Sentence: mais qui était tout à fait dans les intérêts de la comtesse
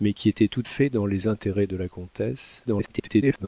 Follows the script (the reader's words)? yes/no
no